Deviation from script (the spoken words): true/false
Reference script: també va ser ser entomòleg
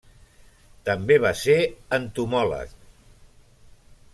true